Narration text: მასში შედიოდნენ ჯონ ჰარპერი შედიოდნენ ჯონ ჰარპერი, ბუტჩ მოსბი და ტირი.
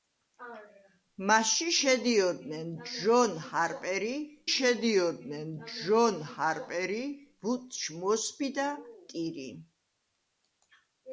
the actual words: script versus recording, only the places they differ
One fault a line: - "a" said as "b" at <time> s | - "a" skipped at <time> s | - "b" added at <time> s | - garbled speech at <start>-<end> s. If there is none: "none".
none